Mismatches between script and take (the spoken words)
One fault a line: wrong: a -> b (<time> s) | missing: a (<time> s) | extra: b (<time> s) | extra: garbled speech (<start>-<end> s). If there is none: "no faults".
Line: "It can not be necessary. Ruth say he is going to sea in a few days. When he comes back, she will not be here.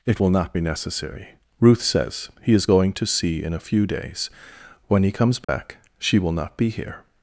wrong: can -> will (0.2 s)
wrong: say -> says (1.8 s)